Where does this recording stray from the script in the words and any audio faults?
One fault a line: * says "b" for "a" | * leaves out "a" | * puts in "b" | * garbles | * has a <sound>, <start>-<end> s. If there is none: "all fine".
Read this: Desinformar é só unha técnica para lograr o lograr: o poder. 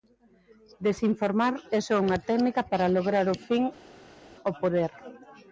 * says "fin" for "lograr"